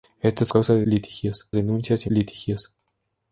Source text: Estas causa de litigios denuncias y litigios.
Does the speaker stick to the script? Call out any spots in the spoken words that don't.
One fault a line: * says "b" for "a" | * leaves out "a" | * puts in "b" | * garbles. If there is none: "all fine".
all fine